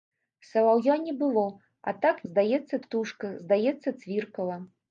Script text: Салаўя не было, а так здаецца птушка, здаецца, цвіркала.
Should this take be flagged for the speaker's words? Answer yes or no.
no